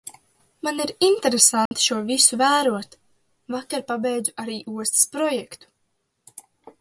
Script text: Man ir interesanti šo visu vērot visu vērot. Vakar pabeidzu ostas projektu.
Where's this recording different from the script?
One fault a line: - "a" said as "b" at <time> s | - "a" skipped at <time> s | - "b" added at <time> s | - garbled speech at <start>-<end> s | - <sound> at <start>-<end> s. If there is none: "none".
- dropout at 1.7-1.7 s
- "visu vērot" skipped at 2.9 s
- "arī" added at 4.4 s